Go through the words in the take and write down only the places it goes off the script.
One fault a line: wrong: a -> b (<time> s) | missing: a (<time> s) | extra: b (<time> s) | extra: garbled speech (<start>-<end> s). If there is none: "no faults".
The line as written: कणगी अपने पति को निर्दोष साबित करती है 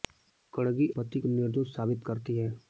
missing: अपने (0.9 s)